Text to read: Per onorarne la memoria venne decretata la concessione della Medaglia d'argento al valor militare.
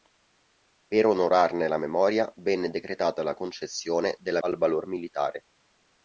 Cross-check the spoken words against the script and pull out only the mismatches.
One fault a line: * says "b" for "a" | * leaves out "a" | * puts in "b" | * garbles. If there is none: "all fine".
* leaves out "Medaglia d'argento"